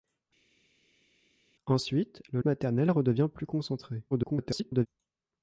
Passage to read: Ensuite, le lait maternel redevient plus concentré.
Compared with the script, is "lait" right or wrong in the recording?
wrong